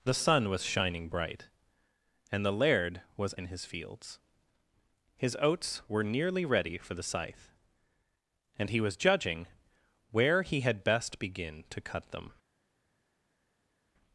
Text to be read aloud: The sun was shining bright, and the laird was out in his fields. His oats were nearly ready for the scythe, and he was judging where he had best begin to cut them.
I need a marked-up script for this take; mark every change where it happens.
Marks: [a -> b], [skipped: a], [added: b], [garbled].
The sun was shining bright, and the laird was [skipped: out] in his fields. His oats were nearly ready for the scythe, and he was judging where he had best begin to cut them.